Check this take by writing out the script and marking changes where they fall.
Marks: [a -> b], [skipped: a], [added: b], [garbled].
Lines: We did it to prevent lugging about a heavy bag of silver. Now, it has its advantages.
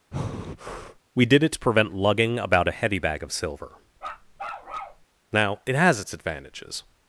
We did it to prevent lugging about a heavy bag of silver. Now, it has its advantages.